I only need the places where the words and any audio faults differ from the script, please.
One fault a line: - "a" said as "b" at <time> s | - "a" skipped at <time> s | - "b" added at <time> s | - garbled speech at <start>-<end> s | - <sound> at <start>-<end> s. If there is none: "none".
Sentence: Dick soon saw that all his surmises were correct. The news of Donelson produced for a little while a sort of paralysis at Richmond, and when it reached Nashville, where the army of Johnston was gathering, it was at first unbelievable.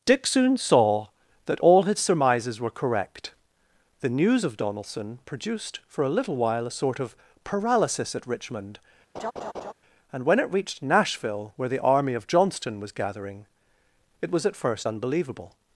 - laugh at 9.1-9.7 s